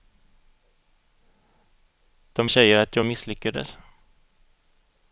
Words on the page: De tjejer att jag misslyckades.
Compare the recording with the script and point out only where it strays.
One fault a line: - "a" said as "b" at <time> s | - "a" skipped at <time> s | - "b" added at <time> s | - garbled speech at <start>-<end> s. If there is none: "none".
none